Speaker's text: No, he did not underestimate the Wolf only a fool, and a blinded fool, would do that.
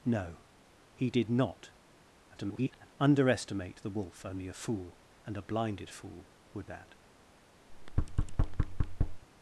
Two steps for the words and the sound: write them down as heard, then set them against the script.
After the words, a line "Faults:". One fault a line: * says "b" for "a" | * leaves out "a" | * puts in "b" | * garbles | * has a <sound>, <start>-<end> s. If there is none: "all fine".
No, he did not [garbled] underestimate the Wolf only a fool, and a blinded fool, would that.
Faults:
* garbles
* leaves out "do"
* has a thud, 7.7-9.2 s